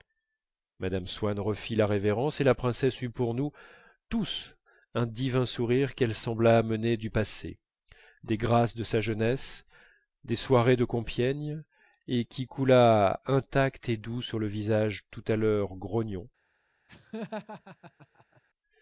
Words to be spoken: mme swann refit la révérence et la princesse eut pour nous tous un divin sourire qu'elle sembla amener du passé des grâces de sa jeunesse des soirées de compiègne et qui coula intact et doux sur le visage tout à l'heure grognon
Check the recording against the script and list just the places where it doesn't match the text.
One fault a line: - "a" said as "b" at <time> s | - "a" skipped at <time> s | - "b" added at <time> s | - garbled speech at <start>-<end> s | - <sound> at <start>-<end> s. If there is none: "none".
- laugh at 16.9-18.4 s